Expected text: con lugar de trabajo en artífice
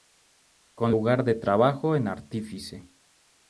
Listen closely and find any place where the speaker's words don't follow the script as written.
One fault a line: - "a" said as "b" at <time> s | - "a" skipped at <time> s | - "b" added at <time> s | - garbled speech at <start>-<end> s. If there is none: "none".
none